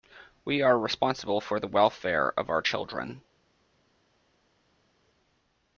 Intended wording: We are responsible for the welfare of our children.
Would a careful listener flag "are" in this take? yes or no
no